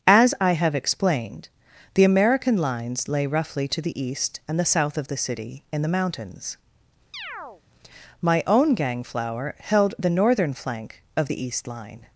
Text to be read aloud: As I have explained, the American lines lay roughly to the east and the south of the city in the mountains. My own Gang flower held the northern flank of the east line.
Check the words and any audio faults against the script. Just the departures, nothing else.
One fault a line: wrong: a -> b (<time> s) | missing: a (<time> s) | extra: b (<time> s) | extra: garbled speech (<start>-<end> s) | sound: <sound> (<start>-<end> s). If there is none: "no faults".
sound: chirp (7.1-7.6 s)